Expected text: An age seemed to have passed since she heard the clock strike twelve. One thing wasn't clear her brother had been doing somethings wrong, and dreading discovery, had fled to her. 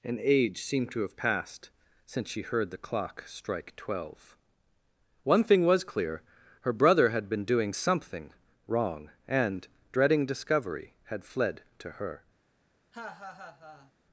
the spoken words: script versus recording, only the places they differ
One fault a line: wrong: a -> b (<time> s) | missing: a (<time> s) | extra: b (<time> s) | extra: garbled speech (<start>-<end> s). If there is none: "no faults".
wrong: wasn't -> was (5.7 s)
wrong: somethings -> something (7.7 s)